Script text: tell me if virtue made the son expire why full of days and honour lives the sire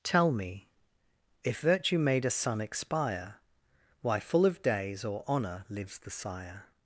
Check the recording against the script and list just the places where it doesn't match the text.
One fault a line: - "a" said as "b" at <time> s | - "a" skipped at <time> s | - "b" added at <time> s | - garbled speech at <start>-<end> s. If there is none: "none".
- "the" said as "a" at 2.2 s
- "and" said as "or" at 5.0 s